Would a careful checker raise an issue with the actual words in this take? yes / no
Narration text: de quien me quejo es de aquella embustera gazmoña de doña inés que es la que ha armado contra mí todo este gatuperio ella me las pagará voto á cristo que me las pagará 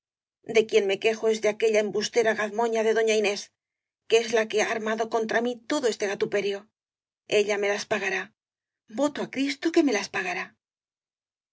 no